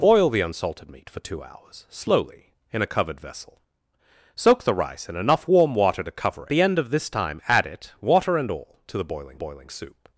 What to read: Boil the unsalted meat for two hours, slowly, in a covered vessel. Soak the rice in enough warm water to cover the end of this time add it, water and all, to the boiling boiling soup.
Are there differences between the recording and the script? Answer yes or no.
no